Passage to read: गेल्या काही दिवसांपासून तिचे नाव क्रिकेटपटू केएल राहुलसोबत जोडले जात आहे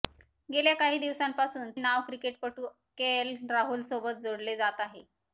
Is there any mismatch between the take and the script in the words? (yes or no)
yes